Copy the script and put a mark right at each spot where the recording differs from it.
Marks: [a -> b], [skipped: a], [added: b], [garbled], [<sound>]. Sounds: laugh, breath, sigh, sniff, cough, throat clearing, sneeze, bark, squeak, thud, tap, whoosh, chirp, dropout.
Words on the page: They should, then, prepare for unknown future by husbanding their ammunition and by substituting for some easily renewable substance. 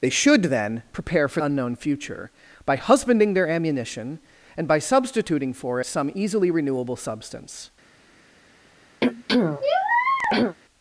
They should, then, prepare for unknown future by husbanding their ammunition and by substituting for some easily renewable substance. [throat clearing]